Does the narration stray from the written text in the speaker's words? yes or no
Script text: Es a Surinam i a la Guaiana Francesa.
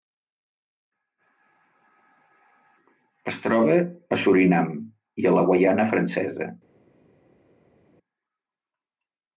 yes